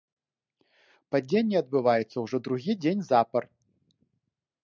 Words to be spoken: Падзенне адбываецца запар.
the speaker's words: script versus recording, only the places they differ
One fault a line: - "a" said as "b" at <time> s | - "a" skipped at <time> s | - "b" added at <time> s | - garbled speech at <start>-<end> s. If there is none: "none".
- "ўжо другі дзень" added at 2.2 s